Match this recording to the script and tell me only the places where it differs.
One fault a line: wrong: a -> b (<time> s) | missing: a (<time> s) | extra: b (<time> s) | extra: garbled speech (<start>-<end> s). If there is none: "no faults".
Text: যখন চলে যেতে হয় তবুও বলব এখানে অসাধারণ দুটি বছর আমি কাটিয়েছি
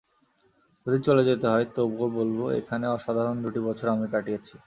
wrong: যখন -> যদি (0.8 s)